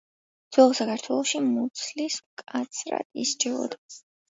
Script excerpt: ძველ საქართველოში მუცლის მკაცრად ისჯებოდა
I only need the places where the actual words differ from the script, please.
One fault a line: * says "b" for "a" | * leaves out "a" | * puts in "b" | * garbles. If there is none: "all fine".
all fine